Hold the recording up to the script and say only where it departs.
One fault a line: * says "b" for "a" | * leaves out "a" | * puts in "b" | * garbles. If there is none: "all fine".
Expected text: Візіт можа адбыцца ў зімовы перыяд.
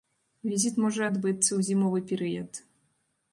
all fine